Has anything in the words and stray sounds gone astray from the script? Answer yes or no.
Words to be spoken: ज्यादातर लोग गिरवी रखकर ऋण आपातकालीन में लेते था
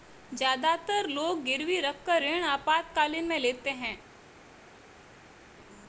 yes